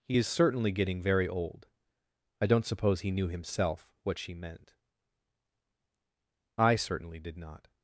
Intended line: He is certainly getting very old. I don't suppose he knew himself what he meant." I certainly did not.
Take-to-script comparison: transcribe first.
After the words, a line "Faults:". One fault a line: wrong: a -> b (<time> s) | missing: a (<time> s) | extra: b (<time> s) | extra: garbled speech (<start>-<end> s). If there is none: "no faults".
He is certainly getting very old. I don't suppose he knew himself what she meant." I certainly did not.
Faults:
wrong: he -> she (4.2 s)